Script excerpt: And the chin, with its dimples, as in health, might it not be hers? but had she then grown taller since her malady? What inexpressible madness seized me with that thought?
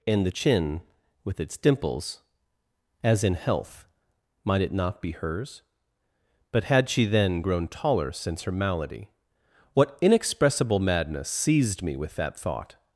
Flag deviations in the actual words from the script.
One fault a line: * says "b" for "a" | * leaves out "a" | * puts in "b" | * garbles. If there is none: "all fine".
all fine